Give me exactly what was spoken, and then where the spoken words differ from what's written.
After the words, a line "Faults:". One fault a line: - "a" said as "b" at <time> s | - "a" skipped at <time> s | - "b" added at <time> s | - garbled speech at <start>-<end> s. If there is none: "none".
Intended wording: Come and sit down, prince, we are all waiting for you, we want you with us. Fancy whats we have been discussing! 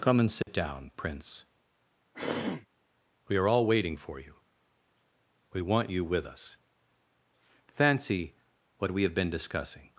Come and sit down, prince, we are all waiting for you, we want you with us. Fancy what we have been discussing!
Faults:
- "whats" said as "what" at 8.8 s